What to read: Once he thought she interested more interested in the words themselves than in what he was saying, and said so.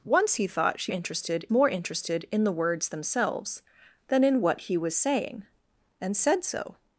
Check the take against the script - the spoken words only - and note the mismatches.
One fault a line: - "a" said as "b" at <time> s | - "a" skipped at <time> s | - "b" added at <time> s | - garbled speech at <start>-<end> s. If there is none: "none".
none